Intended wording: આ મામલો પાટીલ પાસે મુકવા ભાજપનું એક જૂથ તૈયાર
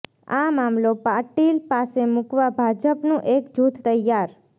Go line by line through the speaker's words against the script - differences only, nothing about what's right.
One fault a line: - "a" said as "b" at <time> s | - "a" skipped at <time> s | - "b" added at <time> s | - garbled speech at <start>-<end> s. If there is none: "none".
none